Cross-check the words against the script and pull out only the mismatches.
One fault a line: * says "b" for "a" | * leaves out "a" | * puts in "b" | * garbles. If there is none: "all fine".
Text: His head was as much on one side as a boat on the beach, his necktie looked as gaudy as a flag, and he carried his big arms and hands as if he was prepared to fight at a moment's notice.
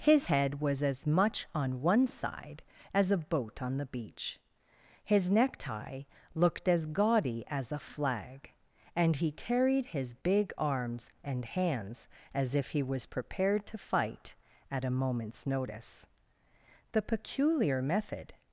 * puts in "The peculiar method"